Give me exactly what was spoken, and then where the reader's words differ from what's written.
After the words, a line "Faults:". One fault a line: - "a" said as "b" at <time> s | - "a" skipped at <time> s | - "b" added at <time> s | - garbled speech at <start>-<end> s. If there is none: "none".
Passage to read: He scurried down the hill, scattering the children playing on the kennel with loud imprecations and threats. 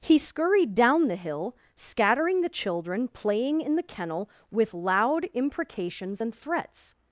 He scurried down the hill, scattering the children playing in the kennel with loud imprecations and threats.
Faults:
- "on" said as "in" at 3.6 s